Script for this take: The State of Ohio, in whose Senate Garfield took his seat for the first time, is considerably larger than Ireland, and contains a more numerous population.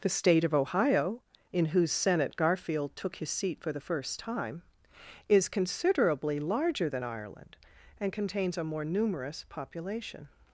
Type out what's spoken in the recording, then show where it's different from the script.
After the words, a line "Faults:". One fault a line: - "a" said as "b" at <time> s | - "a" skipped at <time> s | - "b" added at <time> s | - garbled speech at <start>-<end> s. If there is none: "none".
The State of Ohio, in whose Senate Garfield took his seat for the first time, is considerably larger than Ireland, and contains a more numerous population.
Faults:
none